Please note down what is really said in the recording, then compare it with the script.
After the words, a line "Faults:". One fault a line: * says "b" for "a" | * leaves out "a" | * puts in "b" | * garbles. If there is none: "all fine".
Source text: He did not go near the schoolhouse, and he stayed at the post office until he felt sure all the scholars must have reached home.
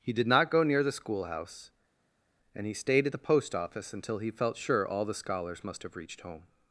He did not go near the schoolhouse, and he stayed at the post office until he felt sure all the scholars must have reached home.
Faults:
all fine